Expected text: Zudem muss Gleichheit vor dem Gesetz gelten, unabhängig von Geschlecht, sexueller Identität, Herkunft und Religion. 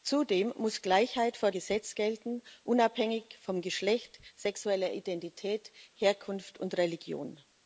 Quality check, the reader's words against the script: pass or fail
fail